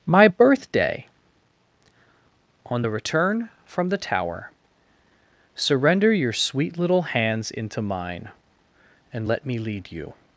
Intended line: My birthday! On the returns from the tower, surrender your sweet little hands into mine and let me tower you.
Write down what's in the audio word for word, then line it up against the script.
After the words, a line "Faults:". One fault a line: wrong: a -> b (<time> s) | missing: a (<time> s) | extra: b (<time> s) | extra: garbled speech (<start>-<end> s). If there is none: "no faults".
My birthday! On the return from the tower, surrender your sweet little hands into mine and let me lead you.
Faults:
wrong: returns -> return (2.9 s)
wrong: tower -> lead (9.6 s)